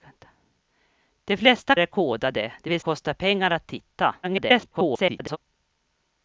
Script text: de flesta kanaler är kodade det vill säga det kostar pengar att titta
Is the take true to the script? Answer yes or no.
no